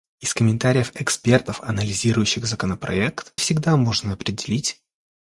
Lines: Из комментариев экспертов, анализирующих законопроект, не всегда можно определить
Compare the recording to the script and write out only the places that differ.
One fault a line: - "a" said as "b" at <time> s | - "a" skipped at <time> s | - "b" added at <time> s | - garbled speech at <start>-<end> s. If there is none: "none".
- "не" skipped at 3.3 s